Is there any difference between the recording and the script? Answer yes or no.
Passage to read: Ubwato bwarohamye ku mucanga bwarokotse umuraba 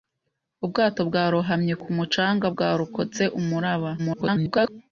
yes